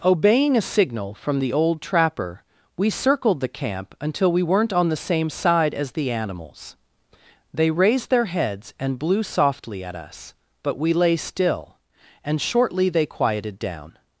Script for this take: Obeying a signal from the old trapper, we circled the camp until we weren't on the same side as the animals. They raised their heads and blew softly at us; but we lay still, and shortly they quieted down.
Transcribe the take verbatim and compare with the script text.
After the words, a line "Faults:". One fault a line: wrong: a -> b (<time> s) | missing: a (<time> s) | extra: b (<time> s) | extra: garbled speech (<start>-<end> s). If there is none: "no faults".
Obeying a signal from the old trapper, we circled the camp until we weren't on the same side as the animals. They raised their heads and blew softly at us; but we lay still, and shortly they quieted down.
Faults:
no faults